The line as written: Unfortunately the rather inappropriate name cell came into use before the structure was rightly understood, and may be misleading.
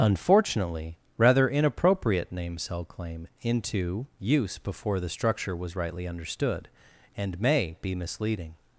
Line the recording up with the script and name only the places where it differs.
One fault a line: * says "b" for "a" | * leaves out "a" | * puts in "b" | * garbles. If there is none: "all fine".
* leaves out "the"
* says "claim" for "came"